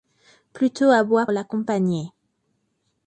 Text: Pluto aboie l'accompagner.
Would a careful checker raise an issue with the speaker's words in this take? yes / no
no